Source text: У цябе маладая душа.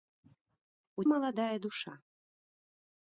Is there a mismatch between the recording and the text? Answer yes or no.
yes